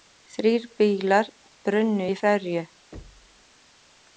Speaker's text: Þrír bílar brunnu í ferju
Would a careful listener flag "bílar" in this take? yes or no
no